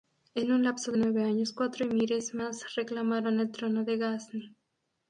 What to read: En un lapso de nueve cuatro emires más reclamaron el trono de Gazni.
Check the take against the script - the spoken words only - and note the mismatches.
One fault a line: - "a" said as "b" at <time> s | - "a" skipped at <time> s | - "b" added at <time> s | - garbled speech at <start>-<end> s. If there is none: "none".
- "años" added at 1.2 s